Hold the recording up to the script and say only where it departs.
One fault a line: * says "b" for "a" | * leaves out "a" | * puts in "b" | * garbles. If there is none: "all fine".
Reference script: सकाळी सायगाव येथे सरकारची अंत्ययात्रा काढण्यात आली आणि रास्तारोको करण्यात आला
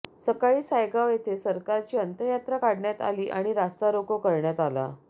all fine